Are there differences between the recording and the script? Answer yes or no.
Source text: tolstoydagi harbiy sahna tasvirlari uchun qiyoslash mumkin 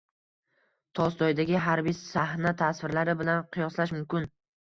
yes